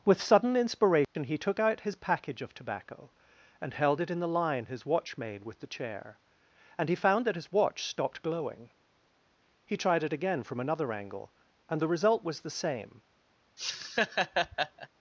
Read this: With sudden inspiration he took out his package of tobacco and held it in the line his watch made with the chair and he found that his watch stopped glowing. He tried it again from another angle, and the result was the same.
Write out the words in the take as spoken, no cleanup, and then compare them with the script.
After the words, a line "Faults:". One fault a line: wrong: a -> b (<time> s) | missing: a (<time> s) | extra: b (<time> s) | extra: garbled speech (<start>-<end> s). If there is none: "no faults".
With sudden inspiration he took out his package of tobacco and held it in the line his watch made with the chair and he found that his watch stopped glowing. He tried it again from another angle, and the result was the same.
Faults:
no faults